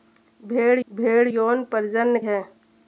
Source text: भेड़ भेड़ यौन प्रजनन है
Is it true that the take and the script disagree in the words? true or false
false